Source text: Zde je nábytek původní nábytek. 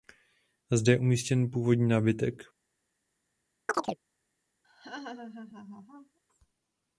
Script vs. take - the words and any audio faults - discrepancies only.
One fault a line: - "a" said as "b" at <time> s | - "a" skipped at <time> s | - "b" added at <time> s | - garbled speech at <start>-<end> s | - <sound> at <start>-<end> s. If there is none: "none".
- "nábytek" said as "umístěn" at 1.0 s
- chirp at 3.7-4.0 s
- laugh at 4.6-6.2 s